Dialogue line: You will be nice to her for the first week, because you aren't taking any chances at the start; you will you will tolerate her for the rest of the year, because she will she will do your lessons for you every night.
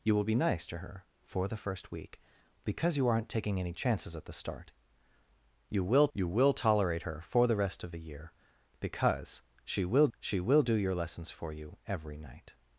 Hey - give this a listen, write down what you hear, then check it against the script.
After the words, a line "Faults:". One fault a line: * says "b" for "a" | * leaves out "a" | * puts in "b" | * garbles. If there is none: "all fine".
You will be nice to her for the first week, because you aren't taking any chances at the start; you will you will tolerate her for the rest of the year, because she will she will do your lessons for you every night.
Faults:
all fine